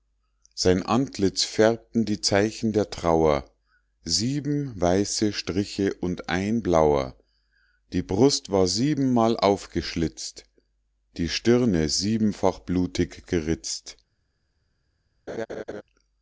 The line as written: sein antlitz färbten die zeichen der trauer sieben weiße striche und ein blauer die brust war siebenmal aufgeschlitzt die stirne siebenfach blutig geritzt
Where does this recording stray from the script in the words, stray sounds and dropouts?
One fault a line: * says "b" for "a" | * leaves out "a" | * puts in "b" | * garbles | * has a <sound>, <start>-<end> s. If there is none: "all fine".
* has a laugh, 15.3-15.8 s